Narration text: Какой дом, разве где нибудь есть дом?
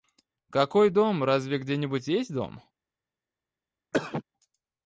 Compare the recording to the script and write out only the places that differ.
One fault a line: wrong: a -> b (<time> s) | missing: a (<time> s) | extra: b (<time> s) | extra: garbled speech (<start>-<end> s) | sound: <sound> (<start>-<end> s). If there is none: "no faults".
sound: cough (3.9-4.2 s)